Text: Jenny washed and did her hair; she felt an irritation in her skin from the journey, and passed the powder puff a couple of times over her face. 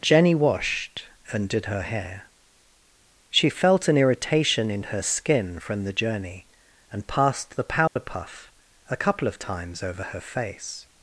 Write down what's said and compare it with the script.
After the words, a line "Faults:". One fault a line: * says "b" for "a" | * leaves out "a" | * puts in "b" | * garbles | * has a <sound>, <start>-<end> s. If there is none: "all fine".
Jenny washed and did her hair; she felt an irritation in her skin from the journey, and passed the powder puff a couple of times over her face.
Faults:
* has a dropout, 7.9-8.0 s